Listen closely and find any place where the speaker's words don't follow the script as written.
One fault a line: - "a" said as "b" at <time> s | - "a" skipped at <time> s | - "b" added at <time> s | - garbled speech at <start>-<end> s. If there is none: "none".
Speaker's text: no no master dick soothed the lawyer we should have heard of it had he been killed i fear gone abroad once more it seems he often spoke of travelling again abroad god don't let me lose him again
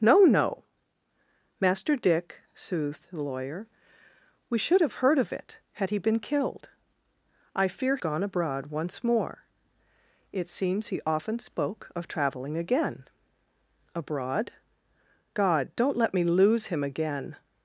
none